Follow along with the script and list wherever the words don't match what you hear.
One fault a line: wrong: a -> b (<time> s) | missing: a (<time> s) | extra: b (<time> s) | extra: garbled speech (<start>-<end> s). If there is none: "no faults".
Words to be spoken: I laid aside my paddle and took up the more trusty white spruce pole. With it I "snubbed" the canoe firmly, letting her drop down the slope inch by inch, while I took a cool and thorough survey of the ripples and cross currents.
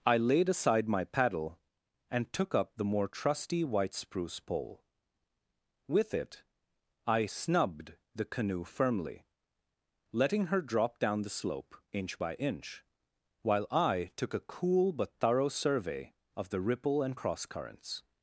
wrong: and -> but (14.9 s)
wrong: ripples -> ripple (16.6 s)